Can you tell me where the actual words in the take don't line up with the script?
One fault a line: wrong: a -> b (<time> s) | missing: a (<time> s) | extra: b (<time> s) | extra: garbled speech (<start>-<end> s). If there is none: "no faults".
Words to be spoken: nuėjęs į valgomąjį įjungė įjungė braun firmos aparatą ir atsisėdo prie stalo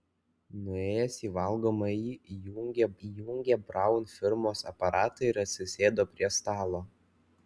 no faults